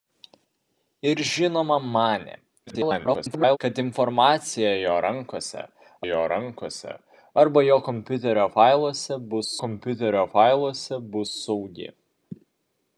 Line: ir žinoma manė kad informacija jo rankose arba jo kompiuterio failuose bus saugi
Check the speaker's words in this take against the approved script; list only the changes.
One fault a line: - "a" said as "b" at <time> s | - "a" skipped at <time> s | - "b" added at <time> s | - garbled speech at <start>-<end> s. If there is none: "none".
- garbled speech at 2.7-3.6 s
- "jo rankose" added at 6.1 s
- "kompiuterio failuose bus" added at 9.6 s